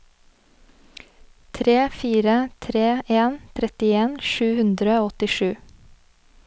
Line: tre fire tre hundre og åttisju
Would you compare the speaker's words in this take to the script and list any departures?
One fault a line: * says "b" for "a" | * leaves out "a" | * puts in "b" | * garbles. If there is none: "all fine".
* puts in "en trettien sju"